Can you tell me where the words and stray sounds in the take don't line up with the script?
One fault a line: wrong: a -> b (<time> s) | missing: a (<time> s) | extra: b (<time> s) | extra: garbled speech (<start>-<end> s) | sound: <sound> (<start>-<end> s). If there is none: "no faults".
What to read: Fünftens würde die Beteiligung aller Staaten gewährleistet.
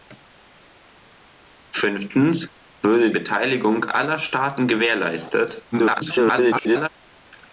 missing: die (3.1 s)
extra: garbled speech (5.7-6.9 s)